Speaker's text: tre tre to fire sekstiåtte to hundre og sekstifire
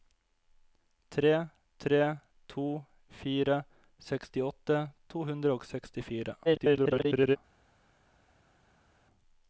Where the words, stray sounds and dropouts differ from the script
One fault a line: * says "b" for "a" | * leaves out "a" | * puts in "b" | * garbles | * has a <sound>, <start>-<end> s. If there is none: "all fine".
* garbles